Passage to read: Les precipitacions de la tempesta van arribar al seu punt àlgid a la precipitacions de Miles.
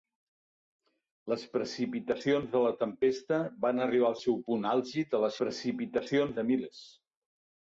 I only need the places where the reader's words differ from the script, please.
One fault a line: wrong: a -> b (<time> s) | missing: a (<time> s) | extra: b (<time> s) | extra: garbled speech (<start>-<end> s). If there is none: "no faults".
no faults